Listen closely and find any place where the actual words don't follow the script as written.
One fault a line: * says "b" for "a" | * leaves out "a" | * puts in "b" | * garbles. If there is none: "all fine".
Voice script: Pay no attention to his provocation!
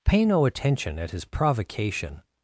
* says "at" for "to"